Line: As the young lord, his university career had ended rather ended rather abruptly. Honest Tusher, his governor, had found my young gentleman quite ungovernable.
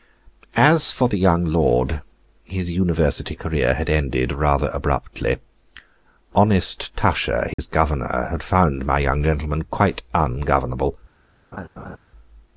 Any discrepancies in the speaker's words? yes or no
yes